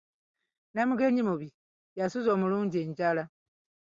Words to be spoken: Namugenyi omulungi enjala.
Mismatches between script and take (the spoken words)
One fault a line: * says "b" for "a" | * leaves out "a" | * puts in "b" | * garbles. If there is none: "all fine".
* puts in "mubi yasuza"